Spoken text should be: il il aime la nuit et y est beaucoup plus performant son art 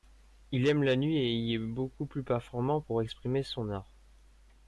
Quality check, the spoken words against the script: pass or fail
fail